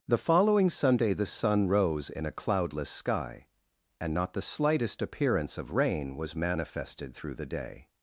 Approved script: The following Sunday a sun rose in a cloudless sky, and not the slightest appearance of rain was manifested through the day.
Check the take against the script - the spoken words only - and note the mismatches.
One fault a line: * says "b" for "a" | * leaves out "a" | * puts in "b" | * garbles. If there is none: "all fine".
* says "the" for "a"